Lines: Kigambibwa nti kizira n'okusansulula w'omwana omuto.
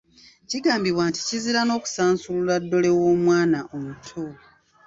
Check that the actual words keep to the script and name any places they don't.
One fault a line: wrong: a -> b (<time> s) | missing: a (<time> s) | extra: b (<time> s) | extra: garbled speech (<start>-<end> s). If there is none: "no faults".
extra: ddole (2.6 s)